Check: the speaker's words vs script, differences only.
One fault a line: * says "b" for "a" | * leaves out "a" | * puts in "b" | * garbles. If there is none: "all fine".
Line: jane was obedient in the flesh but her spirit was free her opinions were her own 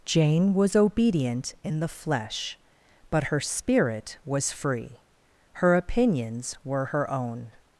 all fine